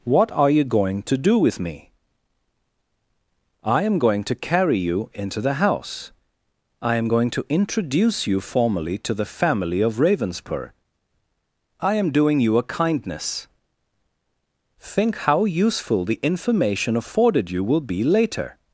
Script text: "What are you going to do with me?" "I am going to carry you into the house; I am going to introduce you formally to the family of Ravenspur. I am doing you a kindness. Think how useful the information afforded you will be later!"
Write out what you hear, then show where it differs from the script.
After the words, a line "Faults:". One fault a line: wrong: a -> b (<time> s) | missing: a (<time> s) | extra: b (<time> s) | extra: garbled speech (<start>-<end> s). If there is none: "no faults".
"What are you going to do with me?" "I am going to carry you into the house; I am going to introduce you formally to the family of Ravenspur. I am doing you a kindness. Think how useful the information afforded you will be later!"
Faults:
no faults